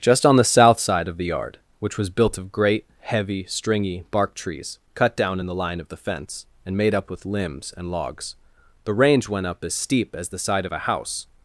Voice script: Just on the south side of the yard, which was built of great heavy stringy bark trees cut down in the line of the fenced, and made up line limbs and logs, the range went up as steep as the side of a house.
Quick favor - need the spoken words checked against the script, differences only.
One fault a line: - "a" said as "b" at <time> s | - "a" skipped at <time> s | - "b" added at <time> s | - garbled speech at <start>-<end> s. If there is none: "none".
- "fenced" said as "fence" at 6.0 s
- "line" said as "with" at 7.1 s